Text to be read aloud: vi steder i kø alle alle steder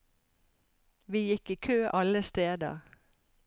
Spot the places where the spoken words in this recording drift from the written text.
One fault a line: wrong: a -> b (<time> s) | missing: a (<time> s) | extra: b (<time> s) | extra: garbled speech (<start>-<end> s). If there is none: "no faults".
wrong: steder -> gikk (1.3 s)
missing: alle (2.2 s)